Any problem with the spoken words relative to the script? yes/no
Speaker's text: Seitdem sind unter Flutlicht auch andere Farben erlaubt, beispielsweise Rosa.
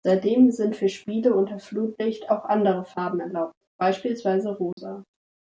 yes